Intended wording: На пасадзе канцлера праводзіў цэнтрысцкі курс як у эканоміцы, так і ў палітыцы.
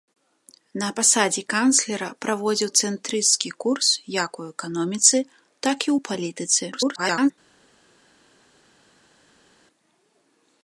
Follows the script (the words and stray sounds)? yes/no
no